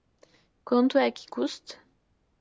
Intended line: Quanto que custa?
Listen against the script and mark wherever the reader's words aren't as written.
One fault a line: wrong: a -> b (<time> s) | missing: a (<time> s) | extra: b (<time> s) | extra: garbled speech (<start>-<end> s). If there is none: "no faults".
extra: é (1.0 s)